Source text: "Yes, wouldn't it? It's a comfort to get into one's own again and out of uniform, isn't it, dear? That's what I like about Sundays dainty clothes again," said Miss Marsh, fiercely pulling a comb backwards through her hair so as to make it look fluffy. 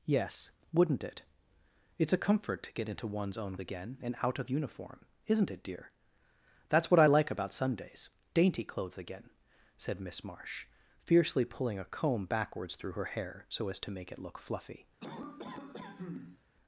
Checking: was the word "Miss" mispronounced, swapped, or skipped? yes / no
no